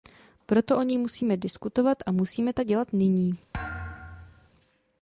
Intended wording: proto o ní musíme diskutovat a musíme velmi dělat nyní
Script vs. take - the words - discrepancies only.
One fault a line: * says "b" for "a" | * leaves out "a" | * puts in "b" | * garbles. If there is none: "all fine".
* says "tak" for "velmi"